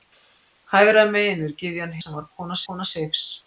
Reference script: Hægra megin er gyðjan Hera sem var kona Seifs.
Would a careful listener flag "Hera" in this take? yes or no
yes